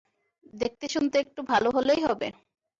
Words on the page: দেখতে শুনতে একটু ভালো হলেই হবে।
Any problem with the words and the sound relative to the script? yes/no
no